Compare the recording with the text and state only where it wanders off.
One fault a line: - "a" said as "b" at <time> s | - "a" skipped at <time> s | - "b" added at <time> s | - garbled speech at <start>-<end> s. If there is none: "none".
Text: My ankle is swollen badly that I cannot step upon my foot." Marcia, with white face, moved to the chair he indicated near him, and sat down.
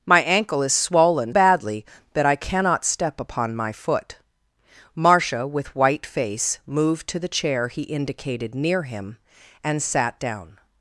none